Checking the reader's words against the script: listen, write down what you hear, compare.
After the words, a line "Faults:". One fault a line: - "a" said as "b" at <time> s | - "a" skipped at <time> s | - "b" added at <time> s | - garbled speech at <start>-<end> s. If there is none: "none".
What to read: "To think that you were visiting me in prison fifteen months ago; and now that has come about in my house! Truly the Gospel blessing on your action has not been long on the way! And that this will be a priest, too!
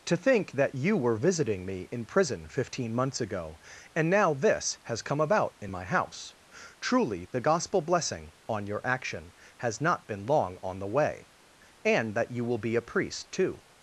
"To think that you were visiting me in prison fifteen months ago; and now this has come about in my house! Truly the Gospel blessing on your action has not been long on the way! And that you will be a priest, too!
Faults:
- "that" said as "this" at 4.3 s
- "this" said as "you" at 12.3 s